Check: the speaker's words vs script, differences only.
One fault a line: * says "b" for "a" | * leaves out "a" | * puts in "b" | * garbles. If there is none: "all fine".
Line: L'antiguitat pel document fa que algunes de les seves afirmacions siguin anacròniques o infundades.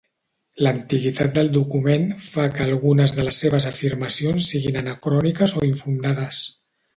* says "del" for "pel"